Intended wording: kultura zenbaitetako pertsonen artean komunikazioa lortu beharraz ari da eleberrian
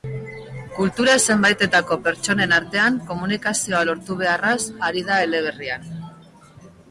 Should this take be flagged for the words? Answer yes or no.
no